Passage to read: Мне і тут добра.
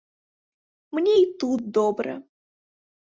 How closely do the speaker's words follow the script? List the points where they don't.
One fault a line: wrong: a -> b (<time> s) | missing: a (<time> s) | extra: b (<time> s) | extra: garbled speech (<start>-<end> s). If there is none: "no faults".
no faults